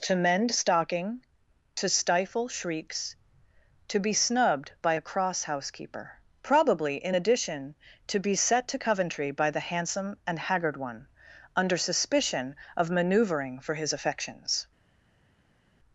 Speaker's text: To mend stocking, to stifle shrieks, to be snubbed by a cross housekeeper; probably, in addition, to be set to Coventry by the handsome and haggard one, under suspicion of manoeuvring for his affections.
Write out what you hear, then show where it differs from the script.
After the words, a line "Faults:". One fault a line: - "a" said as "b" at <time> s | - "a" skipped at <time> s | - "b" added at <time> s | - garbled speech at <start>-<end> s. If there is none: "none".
To mend stocking, to stifle shrieks, to be snubbed by a cross housekeeper; probably, in addition, to be set to Coventry by the handsome and haggard one, under suspicion of manoeuvring for his affections.
Faults:
none